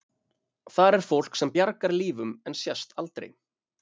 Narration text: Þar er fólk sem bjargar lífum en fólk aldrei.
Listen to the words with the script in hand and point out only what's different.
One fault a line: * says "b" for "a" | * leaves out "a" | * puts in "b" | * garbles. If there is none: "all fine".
* says "sést" for "fólk"